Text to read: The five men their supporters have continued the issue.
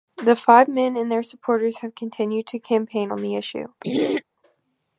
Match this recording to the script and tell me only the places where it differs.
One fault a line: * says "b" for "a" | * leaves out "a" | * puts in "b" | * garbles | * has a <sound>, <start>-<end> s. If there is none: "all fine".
* puts in "and"
* puts in "to campaign on"
* has a throat clearing, 3.8-4.2 s